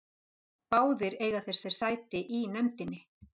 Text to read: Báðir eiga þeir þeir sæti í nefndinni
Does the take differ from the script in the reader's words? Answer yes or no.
no